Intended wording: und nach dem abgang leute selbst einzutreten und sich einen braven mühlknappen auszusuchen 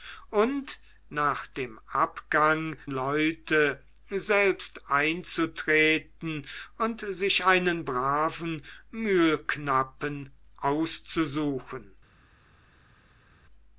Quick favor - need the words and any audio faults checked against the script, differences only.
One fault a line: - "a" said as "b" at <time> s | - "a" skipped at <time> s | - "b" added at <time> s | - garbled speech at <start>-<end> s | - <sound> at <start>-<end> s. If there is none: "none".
none